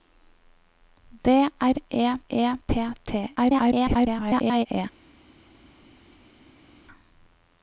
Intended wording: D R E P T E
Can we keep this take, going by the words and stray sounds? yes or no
no